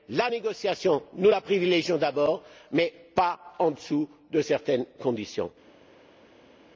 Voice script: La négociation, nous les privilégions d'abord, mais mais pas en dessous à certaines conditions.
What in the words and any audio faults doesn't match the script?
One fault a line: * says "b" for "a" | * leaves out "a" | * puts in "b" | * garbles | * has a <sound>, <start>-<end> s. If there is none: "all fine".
* says "la" for "les"
* leaves out "mais"
* says "de" for "à"